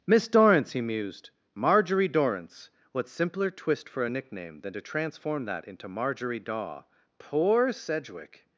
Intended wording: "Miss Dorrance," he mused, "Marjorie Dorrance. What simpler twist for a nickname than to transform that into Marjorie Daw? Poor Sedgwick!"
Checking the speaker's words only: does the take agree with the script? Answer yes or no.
yes